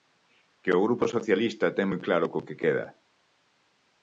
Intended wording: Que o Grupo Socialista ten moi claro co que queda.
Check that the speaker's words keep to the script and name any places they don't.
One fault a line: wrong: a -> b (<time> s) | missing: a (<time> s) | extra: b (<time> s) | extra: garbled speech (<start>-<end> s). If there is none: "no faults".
no faults